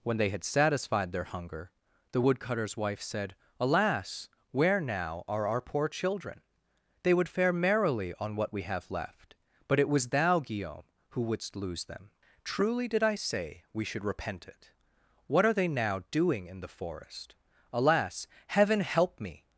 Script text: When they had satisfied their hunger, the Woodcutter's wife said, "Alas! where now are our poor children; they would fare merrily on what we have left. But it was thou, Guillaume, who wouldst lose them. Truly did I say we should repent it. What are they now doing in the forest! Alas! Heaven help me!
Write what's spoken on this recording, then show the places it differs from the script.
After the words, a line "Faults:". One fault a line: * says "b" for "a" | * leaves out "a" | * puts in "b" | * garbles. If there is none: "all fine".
When they had satisfied their hunger, the Woodcutter's wife said, "Alas! where now are our poor children; they would fare merrily on what we have left. But it was thou, Guillaume, who wouldst lose them. Truly did I say we should repent it. What are they now doing in the forest! Alas! Heaven help me!
Faults:
all fine